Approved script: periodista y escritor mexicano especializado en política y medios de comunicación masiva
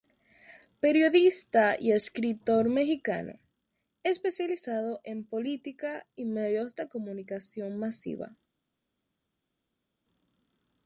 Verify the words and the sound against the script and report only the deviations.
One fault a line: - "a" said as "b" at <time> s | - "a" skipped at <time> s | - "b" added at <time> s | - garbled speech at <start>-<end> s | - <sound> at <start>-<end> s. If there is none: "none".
none